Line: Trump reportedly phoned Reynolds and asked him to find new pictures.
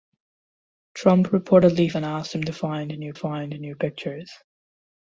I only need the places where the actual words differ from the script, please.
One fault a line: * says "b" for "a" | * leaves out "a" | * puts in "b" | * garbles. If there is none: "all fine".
* leaves out "phoned Reynolds"
* puts in "find new"